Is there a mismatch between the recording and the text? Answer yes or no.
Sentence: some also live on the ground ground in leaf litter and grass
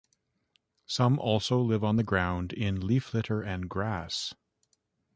yes